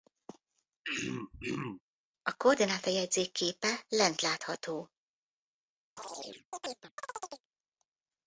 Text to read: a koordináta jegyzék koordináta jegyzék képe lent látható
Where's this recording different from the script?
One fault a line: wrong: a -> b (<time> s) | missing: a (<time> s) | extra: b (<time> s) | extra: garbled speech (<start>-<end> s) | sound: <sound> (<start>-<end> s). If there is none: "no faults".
sound: throat clearing (0.8-1.8 s)
missing: koordináta jegyzék (3.3 s)
sound: chirp (6.0-7.5 s)